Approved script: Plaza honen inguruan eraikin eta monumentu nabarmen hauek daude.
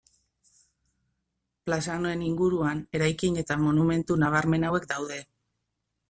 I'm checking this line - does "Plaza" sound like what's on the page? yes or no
yes